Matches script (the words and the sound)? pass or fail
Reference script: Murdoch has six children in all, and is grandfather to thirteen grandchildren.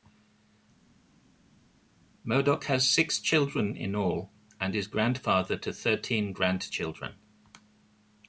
pass